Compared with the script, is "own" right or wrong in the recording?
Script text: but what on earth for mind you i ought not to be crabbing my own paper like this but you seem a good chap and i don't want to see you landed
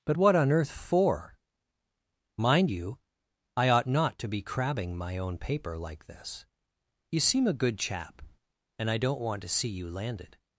right